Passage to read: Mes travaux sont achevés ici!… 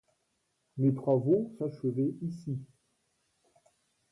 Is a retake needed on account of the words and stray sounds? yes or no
yes